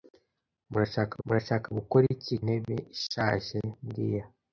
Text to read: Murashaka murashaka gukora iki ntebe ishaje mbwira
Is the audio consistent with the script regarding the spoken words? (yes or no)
yes